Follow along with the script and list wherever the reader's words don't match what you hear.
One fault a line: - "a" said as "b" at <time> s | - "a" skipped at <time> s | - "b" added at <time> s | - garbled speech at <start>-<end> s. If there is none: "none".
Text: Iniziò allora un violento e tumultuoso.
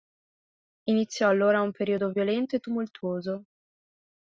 - "periodo" added at 1.7 s